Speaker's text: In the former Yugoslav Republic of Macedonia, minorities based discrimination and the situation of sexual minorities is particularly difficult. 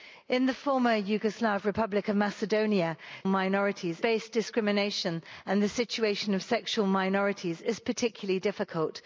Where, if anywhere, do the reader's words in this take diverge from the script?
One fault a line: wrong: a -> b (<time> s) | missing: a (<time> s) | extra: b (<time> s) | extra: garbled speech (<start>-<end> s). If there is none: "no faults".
no faults